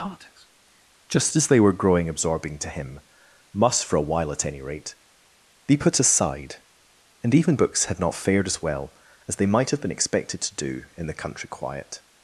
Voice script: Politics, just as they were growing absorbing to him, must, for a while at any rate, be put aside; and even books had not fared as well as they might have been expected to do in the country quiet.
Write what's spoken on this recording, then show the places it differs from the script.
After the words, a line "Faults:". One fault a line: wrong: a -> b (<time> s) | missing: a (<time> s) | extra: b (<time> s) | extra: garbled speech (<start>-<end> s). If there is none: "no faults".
Politics, just as they were growing absorbing to him, must, for a while at any rate, be put aside; and even books had not fared as well as they might have been expected to do in the country quiet.
Faults:
no faults